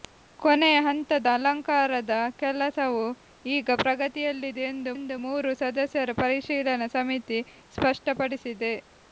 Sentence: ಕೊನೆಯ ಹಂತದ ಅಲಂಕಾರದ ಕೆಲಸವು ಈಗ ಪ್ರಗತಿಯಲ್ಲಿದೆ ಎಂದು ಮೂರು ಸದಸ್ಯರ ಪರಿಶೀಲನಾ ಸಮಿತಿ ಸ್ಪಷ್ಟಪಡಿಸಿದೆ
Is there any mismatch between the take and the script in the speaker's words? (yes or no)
yes